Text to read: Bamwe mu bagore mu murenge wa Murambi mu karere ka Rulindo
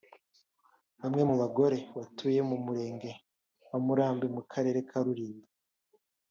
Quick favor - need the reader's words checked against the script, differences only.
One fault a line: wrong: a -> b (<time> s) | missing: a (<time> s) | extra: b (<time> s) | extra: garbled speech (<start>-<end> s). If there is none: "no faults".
extra: batuye (2.0 s)